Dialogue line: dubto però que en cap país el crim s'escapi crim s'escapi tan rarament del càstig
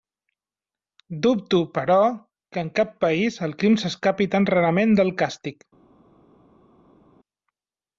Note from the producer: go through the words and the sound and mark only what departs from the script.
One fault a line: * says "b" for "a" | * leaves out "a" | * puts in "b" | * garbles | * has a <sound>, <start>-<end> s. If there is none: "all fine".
* leaves out "crim s'escapi"